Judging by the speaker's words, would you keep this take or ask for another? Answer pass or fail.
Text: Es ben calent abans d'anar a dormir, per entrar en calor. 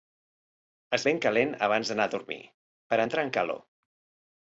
pass